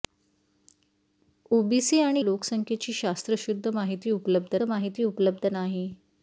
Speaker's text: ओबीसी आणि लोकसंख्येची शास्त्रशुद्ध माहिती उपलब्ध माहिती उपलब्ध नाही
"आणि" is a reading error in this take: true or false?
false